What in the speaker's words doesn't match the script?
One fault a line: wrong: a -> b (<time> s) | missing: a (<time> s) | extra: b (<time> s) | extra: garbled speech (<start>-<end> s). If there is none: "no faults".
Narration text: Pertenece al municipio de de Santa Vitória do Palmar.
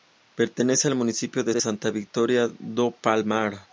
no faults